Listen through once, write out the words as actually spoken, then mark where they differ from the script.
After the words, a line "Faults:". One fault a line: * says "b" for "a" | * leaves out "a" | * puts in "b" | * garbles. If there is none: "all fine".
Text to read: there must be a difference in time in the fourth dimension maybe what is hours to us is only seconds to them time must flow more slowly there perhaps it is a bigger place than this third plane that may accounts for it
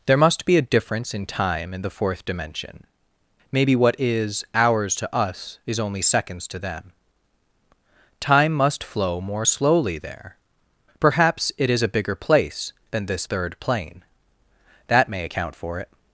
there must be a difference in time in the fourth dimension maybe what is hours to us is only seconds to them time must flow more slowly there perhaps it is a bigger place than this third plane that may account for it
Faults:
* says "account" for "accounts"